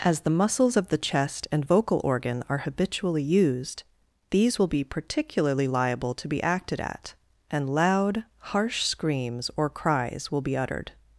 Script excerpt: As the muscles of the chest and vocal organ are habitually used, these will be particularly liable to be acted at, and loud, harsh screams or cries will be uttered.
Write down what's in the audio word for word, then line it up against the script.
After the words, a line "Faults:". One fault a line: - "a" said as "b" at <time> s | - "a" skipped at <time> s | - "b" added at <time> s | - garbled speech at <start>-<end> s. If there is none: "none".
As the muscles of the chest and vocal organ are habitually used, these will be particularly liable to be acted at, and loud, harsh screams or cries will be uttered.
Faults:
none